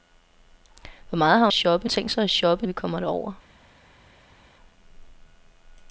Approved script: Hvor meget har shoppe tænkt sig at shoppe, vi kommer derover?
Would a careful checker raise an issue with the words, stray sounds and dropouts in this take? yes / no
no